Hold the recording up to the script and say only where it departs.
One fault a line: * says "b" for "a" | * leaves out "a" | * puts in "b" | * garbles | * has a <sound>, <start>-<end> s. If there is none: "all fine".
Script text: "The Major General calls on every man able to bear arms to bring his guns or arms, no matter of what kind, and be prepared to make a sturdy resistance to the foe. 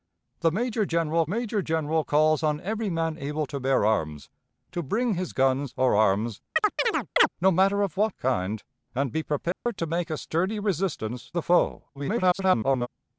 * puts in "Major General"
* has a chirp, 6.6-7.3 s
* has a dropout, 9.5-9.7 s
* leaves out "to"
* garbles